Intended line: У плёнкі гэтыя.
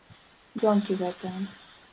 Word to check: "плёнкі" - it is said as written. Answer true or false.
true